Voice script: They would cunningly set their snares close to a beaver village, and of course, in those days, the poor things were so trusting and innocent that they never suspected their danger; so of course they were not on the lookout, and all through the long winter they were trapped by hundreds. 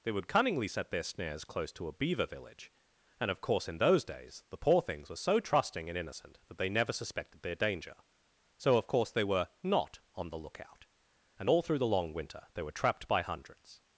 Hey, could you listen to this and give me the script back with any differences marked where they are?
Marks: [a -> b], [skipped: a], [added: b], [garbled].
They would cunningly set their snares close to a beaver village, and of course, in those days, the poor things were so trusting and innocent that they never suspected their danger; so of course they were not on the lookout, and all through the long winter they were trapped by hundreds.